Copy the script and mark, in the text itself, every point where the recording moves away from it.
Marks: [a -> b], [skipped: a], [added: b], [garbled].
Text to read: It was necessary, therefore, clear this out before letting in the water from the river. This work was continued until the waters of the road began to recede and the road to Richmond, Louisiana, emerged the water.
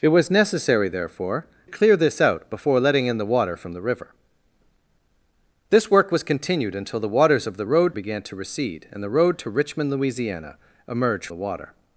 It was necessary, therefore, clear this out before letting in the water from the river. This work was continued until the waters of the road began to recede and the road to Richmond, Louisiana, emerged the water.